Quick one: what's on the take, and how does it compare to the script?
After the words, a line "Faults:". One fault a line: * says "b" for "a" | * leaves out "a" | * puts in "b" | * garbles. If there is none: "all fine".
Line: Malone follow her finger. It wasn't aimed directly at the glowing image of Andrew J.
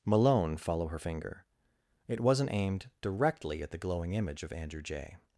Malone follow her finger. It wasn't aimed directly at the glowing image of Andrew J.
Faults:
all fine